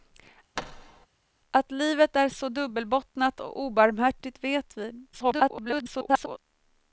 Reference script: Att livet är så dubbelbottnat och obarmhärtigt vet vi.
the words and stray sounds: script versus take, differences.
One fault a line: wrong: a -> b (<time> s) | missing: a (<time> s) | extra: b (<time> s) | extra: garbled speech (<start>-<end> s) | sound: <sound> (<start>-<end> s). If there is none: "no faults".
sound: thud (0.6-1.1 s)
extra: garbled speech (5.1-6.4 s)